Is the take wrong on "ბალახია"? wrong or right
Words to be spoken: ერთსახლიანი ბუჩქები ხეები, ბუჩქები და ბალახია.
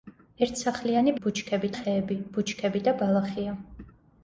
right